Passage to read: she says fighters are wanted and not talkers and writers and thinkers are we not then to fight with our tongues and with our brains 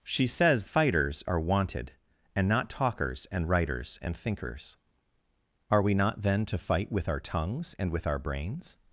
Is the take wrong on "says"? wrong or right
right